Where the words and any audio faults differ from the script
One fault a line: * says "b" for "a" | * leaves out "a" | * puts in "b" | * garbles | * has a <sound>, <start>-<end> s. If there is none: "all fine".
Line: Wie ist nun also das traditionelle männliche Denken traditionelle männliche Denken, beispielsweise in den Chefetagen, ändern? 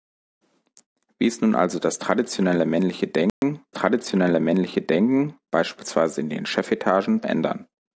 * has a dropout, 3.3-3.4 s